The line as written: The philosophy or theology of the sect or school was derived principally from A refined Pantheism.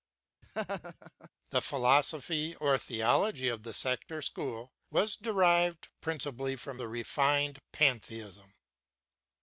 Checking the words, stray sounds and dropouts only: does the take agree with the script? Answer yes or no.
no